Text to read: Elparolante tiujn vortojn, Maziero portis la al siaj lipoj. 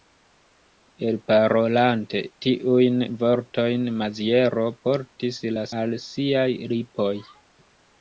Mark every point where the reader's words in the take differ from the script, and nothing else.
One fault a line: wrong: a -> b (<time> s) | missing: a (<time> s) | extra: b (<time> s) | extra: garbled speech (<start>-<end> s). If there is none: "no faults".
no faults